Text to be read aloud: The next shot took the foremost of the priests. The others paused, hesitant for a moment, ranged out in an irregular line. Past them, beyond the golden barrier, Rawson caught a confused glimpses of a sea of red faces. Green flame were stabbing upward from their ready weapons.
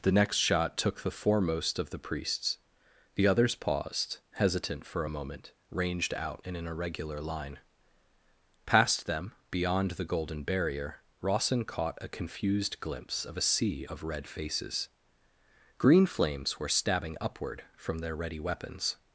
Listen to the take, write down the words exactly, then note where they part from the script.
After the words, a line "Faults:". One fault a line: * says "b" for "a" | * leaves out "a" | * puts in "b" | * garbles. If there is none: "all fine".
The next shot took the foremost of the priests. The others paused, hesitant for a moment, ranged out in an irregular line. Past them, beyond the golden barrier, Rawson caught a confused glimpse of a sea of red faces. Green flames were stabbing upward from their ready weapons.
Faults:
* says "glimpse" for "glimpses"
* says "flames" for "flame"